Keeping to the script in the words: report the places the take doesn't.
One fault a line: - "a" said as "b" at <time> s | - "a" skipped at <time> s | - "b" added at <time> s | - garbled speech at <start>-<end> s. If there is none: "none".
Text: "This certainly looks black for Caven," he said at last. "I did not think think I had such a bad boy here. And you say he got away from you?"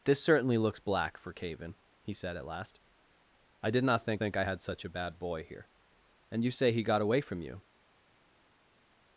none